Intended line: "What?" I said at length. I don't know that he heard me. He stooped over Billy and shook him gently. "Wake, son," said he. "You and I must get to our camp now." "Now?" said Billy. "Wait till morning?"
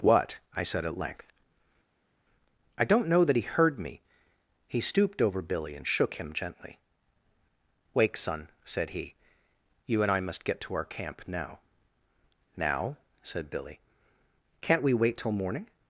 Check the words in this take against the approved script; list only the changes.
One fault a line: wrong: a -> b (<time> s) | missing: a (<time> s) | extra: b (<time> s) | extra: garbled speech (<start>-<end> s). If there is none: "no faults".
extra: Can't we (14.6 s)